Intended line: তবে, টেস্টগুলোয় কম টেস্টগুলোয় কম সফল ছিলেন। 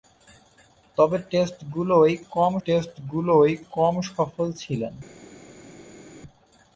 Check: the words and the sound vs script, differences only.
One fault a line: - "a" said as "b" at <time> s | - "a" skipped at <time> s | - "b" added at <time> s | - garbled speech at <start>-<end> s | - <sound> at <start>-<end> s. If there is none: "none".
none